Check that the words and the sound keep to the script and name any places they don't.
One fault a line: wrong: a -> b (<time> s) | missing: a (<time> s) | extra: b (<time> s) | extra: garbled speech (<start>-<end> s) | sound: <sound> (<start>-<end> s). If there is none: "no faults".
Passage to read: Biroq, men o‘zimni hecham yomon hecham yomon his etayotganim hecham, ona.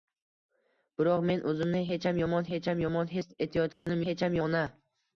sound: dropout (3.7-3.9 s)